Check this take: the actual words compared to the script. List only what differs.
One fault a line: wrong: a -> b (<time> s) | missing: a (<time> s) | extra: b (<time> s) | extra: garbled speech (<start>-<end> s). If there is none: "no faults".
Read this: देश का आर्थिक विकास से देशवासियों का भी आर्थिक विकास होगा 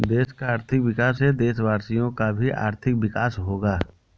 no faults